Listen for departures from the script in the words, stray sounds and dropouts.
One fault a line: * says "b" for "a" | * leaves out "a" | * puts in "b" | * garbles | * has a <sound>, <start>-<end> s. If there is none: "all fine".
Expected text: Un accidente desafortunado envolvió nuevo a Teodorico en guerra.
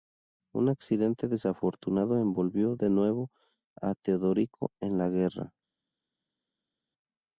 * puts in "de"
* puts in "la"